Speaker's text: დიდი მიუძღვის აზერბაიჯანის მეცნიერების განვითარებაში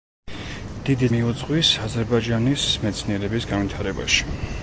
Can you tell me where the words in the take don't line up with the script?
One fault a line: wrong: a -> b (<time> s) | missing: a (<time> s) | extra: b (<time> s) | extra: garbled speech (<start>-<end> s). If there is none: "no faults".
no faults